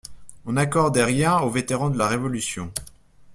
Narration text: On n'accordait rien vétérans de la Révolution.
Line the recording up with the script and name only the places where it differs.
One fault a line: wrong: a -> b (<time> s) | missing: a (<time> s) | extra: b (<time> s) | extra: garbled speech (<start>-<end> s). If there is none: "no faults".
extra: aux (1.4 s)